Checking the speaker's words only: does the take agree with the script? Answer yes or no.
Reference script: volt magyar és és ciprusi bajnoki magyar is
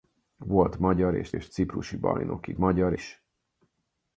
yes